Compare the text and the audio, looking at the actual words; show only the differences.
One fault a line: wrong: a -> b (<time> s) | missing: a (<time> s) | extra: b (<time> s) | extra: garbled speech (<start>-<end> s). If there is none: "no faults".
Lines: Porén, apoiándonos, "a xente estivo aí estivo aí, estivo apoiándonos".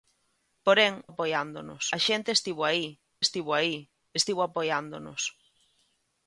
no faults